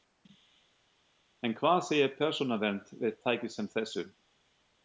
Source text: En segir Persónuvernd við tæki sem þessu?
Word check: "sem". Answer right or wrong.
right